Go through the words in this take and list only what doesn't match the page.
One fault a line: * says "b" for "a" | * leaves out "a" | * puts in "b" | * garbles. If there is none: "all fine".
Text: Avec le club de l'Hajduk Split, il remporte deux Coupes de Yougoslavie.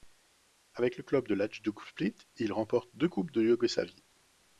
all fine